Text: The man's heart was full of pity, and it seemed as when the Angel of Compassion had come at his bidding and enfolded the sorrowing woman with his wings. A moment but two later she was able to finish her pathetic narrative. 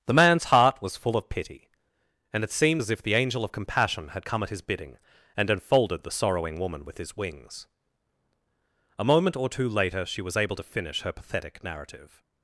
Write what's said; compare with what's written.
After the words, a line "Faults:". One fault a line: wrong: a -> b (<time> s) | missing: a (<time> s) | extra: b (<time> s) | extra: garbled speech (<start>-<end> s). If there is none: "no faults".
The man's heart was full of pity, and it seemed as if the Angel of Compassion had come at his bidding and enfolded the sorrowing woman with his wings. A moment or two later she was able to finish her pathetic narrative.
Faults:
wrong: when -> if (2.9 s)
wrong: but -> or (9.4 s)